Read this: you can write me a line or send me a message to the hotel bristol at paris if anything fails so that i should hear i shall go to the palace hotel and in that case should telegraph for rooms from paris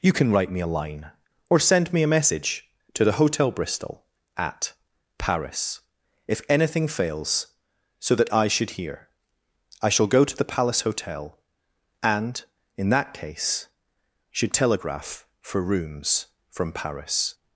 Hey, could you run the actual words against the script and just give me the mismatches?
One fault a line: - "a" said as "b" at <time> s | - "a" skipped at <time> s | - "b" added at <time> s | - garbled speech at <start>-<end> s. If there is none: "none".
none